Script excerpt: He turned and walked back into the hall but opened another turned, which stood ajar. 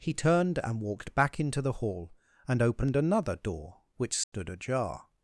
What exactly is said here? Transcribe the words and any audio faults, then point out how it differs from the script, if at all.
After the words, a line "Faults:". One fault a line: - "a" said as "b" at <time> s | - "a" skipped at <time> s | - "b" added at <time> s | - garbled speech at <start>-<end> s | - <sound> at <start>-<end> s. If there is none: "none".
He turned and walked back into the hall and opened another door, which stood ajar.
Faults:
- "but" said as "and" at 2.5 s
- "turned" said as "door" at 3.4 s
- dropout at 4.2-4.3 s